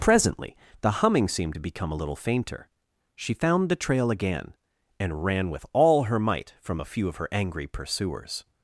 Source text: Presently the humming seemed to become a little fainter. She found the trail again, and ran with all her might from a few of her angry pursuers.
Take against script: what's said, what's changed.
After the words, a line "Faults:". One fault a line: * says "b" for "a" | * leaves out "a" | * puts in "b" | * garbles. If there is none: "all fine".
Presently the humming seemed to become a little fainter. She found the trail again, and ran with all her might from a few of her angry pursuers.
Faults:
all fine